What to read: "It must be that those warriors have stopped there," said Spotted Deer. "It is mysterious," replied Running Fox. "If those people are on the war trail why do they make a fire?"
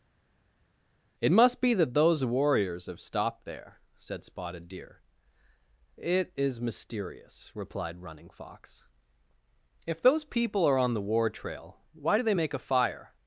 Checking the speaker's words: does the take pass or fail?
pass